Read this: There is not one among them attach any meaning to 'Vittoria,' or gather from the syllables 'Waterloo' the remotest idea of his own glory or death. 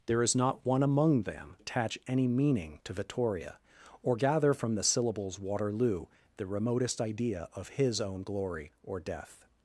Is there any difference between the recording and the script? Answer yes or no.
no